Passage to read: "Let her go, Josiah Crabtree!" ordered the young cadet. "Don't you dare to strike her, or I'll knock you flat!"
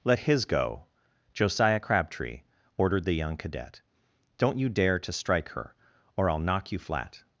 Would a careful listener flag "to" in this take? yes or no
no